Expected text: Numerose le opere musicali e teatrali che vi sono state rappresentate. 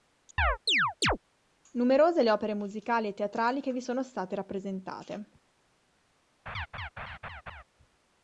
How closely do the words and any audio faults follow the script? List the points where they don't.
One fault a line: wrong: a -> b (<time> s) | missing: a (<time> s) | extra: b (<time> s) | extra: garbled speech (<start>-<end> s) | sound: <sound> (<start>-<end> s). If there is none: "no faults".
sound: chirp (0.4-1.2 s)
sound: laugh (6.5-7.6 s)